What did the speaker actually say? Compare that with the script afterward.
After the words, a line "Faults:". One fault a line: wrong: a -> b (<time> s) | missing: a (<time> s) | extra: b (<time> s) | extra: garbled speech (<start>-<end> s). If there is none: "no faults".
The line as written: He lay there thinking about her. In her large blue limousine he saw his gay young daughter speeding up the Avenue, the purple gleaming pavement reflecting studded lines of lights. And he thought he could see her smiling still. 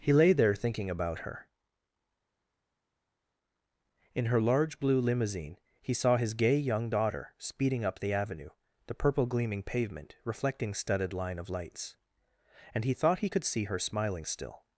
He lay there thinking about her. In her large blue limousine he saw his gay young daughter speeding up the Avenue, the purple gleaming pavement reflecting studded line of lights. And he thought he could see her smiling still.
Faults:
wrong: lines -> line (11.1 s)